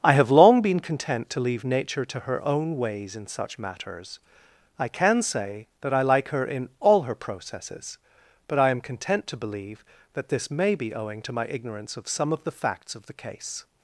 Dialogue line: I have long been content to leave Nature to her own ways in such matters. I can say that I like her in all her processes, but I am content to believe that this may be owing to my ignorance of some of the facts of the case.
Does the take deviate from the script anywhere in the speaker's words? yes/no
no